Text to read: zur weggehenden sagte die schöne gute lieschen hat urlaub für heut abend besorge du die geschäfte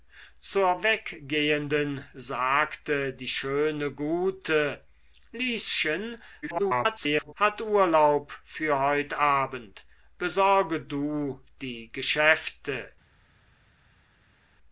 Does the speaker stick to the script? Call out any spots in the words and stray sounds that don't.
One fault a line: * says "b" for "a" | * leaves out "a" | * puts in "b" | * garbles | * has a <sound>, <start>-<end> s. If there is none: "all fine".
* garbles